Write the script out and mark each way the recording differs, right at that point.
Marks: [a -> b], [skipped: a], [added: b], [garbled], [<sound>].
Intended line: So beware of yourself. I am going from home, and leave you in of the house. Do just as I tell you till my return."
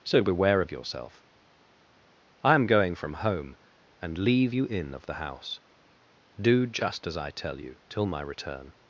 So beware of yourself. I am going from home, and leave you in of the house. Do just as I tell you till my return."